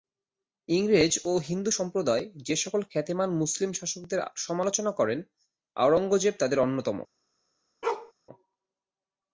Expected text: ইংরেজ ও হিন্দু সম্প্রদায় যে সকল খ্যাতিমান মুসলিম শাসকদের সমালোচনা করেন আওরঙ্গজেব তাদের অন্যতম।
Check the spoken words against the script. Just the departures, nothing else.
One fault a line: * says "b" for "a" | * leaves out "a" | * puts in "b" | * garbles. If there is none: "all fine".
all fine